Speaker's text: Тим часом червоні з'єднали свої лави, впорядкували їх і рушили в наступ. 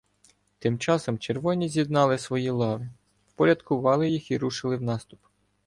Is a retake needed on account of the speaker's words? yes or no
no